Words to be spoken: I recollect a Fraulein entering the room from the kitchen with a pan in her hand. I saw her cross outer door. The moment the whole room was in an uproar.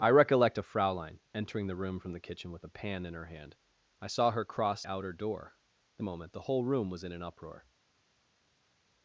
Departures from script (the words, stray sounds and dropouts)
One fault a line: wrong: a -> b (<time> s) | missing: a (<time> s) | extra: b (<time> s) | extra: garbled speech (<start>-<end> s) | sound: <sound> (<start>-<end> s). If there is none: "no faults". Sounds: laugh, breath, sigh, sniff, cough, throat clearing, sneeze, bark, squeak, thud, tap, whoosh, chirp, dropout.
no faults